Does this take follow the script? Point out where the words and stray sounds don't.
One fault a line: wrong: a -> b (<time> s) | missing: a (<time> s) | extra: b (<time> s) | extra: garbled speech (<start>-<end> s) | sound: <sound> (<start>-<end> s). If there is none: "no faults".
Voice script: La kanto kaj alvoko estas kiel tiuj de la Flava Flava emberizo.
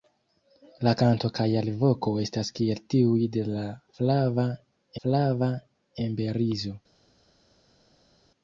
no faults